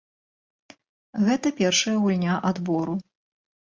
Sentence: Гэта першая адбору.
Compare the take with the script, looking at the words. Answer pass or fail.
fail